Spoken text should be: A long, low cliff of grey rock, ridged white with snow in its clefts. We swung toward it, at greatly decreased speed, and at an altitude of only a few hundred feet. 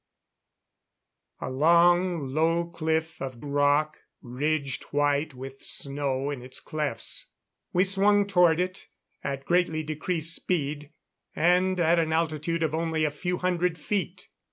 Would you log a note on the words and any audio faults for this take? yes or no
yes